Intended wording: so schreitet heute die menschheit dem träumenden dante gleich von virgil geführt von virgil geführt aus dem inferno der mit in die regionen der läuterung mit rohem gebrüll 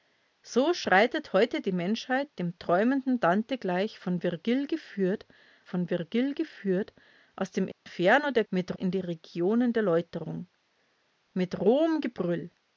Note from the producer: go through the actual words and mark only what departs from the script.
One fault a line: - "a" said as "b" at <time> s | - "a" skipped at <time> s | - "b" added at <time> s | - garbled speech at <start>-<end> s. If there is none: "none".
none